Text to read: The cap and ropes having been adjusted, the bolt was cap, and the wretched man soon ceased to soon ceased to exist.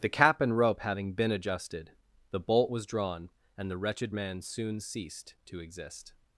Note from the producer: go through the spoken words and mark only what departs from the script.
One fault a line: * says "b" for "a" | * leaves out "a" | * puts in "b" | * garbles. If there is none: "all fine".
* says "rope" for "ropes"
* says "drawn" for "cap"
* leaves out "soon ceased to"